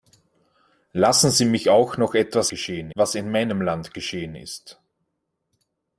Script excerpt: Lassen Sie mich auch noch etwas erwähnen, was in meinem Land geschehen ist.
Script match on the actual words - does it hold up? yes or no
no